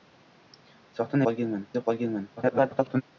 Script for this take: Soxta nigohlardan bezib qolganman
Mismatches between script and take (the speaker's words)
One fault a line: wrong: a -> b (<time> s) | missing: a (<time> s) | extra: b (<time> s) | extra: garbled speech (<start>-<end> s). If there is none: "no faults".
wrong: nigohlardan -> qolganman (1.3 s)
extra: garbled speech (2.4-3.0 s)